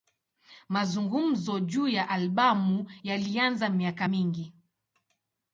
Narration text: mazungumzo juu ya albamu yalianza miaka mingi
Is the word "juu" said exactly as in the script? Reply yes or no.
yes